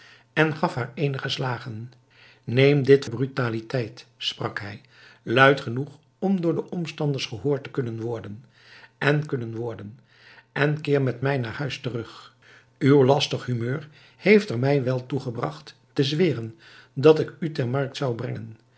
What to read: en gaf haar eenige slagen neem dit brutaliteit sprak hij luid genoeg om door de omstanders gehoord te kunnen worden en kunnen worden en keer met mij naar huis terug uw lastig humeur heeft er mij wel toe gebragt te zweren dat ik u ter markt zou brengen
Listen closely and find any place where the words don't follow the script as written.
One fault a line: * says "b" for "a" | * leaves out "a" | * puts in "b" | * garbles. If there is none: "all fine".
all fine